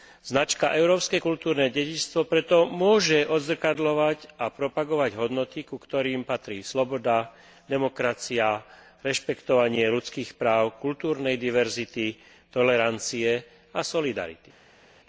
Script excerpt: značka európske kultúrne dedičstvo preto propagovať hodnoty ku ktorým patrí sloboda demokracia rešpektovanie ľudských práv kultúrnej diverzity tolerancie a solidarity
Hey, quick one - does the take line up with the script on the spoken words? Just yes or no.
no